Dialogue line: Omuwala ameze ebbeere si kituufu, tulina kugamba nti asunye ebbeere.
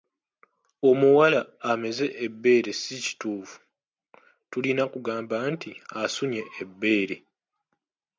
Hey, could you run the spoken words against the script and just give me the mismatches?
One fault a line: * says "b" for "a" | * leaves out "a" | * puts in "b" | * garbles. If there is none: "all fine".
all fine